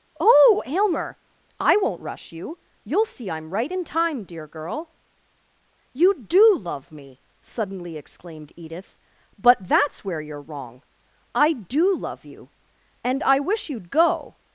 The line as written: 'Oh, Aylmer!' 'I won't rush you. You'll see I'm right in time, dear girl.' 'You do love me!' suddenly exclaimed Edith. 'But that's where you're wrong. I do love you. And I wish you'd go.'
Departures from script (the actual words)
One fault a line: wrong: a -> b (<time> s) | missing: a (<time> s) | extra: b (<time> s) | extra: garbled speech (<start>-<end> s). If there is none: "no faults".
no faults